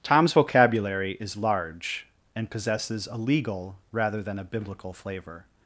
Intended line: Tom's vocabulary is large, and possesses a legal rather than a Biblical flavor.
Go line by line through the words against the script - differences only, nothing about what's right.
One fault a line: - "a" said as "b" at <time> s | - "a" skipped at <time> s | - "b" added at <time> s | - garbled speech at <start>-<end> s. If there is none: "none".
none